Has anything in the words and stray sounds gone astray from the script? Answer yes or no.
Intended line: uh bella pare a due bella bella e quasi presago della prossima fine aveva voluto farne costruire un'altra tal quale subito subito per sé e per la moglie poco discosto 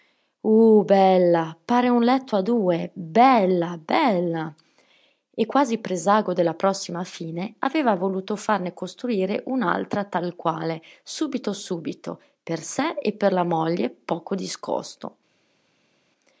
yes